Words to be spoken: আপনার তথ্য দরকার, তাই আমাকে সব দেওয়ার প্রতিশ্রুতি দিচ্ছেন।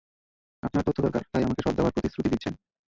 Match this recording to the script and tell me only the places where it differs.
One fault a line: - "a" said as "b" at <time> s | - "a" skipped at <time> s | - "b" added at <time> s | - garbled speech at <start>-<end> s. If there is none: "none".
none